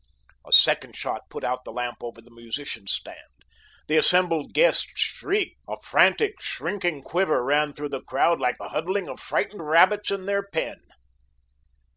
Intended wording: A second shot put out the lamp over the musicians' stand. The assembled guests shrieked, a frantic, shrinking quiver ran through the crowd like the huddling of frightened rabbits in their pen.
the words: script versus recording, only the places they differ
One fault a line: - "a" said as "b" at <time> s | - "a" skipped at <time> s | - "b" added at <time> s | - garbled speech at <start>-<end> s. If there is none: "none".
none